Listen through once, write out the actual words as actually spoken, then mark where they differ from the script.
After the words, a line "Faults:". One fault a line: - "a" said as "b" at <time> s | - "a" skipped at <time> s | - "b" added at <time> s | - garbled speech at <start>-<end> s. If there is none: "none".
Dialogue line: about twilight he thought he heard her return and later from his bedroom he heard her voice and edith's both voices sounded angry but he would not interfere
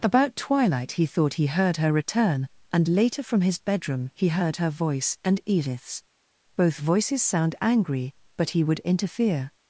about twilight he thought he heard her return and later from his bedroom he heard her voice and edith's both voices sound angry but he would interfere
Faults:
- "sounded" said as "sound" at 7.2 s
- "not" skipped at 8.8 s